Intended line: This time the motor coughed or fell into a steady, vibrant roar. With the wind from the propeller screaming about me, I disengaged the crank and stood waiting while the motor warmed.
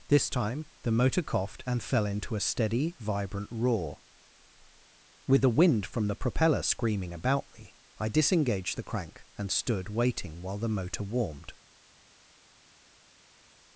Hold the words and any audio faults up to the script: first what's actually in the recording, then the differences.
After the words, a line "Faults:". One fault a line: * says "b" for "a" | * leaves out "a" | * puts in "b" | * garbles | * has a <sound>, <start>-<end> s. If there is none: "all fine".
This time the motor coughed and fell into a steady, vibrant roar. With the wind from the propeller screaming about me, I disengaged the crank and stood waiting while the motor warmed.
Faults:
* says "and" for "or"